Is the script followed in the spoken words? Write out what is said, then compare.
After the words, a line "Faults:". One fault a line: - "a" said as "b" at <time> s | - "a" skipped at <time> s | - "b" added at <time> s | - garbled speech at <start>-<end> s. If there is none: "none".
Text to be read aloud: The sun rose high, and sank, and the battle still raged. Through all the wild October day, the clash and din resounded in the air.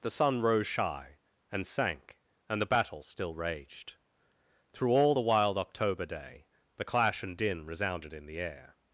The sun rose shy, and sank, and the battle still raged. Through all the wild October day, the clash and din resounded in the air.
Faults:
- "high" said as "shy" at 0.7 s